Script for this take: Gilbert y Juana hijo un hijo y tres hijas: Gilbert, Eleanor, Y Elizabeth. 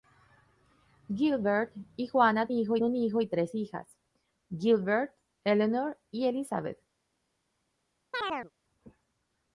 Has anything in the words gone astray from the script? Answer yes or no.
no